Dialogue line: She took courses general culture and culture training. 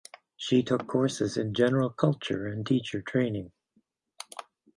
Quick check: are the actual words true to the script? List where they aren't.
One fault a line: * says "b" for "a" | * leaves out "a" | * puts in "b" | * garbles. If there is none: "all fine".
* puts in "in"
* says "teacher" for "culture"